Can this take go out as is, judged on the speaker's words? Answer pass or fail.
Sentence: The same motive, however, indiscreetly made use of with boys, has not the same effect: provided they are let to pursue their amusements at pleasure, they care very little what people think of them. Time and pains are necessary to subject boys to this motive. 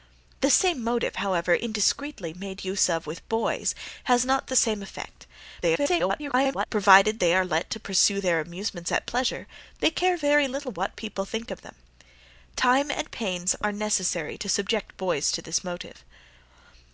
fail